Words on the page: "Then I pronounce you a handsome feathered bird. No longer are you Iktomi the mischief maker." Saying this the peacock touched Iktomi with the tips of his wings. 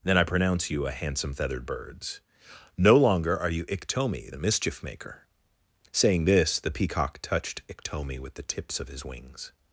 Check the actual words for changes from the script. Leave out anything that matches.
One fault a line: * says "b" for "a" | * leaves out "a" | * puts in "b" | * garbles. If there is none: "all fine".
* says "birds" for "bird"